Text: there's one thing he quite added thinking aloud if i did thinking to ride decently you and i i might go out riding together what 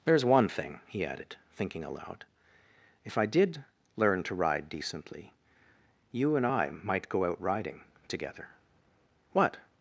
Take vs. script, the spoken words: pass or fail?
fail